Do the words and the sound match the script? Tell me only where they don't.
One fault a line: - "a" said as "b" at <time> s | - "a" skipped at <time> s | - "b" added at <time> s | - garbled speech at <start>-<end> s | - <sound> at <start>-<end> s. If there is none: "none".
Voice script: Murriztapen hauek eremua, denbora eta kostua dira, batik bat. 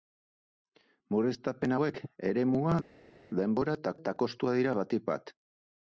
- "eta" added at 4.0 s